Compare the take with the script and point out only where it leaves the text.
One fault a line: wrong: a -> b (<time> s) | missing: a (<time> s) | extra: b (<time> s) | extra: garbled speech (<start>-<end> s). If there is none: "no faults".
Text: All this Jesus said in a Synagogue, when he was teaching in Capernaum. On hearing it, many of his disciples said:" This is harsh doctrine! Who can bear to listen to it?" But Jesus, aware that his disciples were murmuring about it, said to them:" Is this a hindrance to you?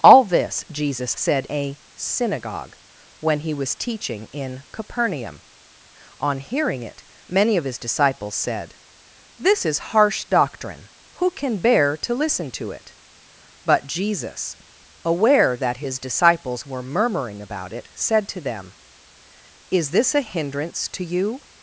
missing: in (1.5 s)